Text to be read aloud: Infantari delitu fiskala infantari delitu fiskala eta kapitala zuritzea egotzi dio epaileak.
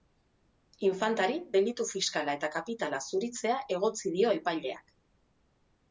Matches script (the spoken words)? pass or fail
fail